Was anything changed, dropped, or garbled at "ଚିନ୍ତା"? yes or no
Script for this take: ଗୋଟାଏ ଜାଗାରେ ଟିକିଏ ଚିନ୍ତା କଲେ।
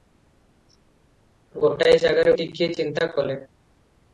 no